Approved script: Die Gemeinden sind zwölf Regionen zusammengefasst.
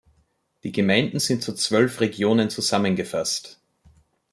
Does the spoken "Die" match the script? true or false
true